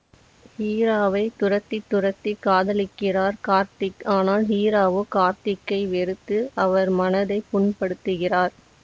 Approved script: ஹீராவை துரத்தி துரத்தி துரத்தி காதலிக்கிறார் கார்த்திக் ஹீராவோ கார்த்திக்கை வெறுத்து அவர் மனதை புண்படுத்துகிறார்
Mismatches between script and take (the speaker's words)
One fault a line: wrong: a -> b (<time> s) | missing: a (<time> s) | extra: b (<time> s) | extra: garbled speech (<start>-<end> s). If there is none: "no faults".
missing: துரத்தி (2.3 s)
extra: ஆனால் (4.2 s)